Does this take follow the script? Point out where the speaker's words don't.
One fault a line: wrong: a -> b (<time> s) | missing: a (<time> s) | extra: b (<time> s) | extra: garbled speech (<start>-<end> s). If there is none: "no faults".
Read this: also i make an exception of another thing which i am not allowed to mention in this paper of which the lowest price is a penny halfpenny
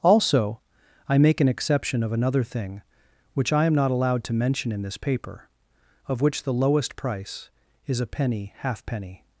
no faults